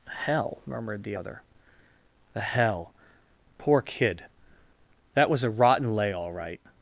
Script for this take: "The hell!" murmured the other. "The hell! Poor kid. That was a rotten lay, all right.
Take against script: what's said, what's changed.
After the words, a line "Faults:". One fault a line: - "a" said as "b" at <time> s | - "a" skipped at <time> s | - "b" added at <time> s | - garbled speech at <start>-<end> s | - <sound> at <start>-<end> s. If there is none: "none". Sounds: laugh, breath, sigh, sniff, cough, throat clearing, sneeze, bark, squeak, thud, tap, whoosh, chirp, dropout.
hell!" murmured the other. "The hell! Poor kid. That was a rotten lay, all right.
Faults:
- "The" skipped at 0.1 s